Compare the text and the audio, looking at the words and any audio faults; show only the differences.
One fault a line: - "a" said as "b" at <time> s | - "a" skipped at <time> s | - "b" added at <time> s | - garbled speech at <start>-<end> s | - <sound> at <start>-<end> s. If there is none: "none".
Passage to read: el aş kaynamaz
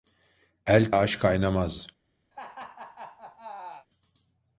- laugh at 2.3-3.9 s